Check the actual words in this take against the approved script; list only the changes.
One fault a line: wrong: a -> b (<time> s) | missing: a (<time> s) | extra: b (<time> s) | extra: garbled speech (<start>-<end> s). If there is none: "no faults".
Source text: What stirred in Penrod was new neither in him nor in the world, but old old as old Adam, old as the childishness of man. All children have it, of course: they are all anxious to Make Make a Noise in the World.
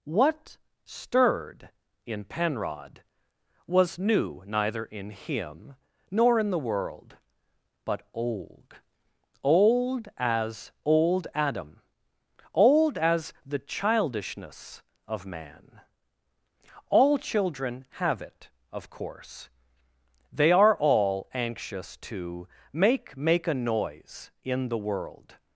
no faults